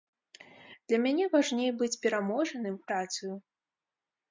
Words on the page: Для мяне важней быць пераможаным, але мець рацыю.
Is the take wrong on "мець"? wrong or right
wrong